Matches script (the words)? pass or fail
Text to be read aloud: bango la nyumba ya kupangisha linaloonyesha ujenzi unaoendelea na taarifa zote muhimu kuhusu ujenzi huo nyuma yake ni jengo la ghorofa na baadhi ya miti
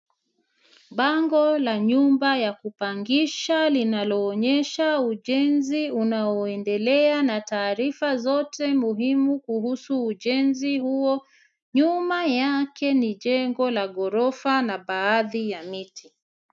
pass